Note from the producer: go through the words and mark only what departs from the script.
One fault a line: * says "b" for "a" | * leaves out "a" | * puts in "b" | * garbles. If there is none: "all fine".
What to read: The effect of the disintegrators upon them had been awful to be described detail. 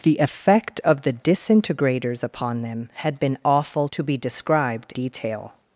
all fine